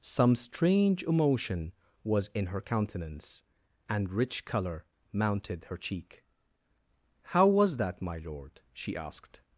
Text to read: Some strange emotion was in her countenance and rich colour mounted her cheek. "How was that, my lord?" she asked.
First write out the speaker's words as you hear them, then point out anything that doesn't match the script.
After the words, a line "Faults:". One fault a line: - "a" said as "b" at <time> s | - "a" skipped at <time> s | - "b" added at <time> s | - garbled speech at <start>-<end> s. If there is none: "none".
Some strange emotion was in her countenance and rich colour mounted her cheek. "How was that, my lord?" she asked.
Faults:
none